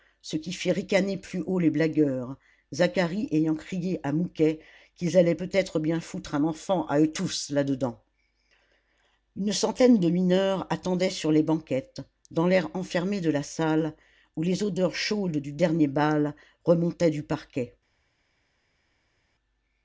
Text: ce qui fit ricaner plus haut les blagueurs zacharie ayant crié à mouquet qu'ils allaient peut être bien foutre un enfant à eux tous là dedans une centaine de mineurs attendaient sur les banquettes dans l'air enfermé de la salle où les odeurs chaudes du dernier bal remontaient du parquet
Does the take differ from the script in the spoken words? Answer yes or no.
no